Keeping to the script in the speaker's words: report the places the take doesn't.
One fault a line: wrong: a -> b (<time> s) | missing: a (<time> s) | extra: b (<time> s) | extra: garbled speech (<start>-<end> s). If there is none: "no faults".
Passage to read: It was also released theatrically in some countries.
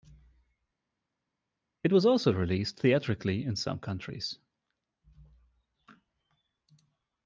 no faults